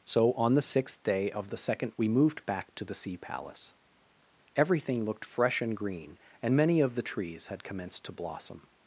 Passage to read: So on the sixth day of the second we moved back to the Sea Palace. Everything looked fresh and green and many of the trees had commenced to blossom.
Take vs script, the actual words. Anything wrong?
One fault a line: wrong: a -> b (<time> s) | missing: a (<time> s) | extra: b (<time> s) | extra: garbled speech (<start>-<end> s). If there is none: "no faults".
no faults